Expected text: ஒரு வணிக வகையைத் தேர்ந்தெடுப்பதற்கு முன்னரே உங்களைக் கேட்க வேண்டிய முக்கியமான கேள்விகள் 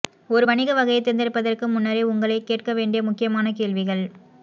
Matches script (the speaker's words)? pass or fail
pass